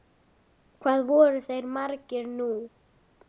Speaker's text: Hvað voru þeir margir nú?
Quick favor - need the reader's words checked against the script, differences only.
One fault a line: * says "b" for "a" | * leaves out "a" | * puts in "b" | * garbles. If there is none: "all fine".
all fine